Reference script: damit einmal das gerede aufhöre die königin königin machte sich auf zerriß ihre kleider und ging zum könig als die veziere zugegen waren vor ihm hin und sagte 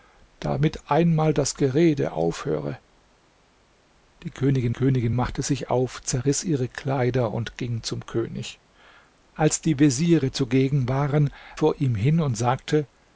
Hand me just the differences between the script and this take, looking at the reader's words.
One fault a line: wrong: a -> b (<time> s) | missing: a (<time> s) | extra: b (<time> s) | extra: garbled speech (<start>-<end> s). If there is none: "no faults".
no faults